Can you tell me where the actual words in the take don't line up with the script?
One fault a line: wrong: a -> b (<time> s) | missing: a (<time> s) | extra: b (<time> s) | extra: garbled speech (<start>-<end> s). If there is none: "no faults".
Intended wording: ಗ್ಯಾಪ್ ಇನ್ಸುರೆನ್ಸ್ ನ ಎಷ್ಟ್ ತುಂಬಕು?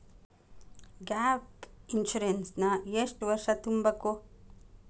extra: ವರ್ಷ (3.2 s)